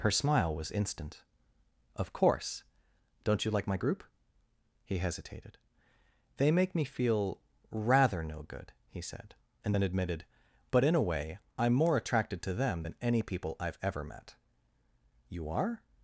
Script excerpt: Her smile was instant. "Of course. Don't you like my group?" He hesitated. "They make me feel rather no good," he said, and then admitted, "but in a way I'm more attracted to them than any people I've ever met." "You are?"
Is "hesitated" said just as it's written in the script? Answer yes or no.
yes